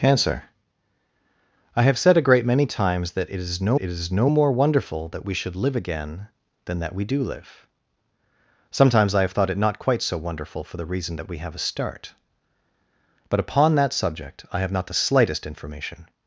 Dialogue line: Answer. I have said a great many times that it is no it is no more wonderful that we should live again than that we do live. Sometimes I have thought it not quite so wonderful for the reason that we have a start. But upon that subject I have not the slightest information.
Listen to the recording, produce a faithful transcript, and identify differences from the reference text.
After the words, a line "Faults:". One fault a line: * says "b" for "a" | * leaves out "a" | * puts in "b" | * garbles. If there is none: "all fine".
Answer. I have said a great many times that it is no it is no more wonderful that we should live again than that we do live. Sometimes I have thought it not quite so wonderful for the reason that we have a start. But upon that subject I have not the slightest information.
Faults:
all fine